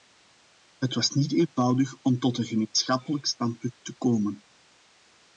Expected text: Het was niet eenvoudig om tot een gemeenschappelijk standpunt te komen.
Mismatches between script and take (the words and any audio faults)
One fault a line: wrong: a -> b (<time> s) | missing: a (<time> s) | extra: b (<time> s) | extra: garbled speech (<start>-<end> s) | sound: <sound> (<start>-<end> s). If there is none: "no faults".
no faults